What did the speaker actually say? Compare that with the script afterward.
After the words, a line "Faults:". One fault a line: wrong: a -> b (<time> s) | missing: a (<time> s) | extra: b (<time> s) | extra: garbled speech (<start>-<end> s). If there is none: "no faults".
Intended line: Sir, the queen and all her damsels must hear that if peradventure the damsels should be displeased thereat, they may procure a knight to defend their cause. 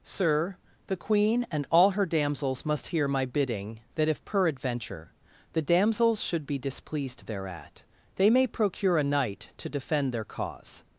Sir, the queen and all her damsels must hear my bidding, that if peradventure the damsels should be displeased thereat, they may procure a knight to defend their cause.
Faults:
extra: my bidding (3.1 s)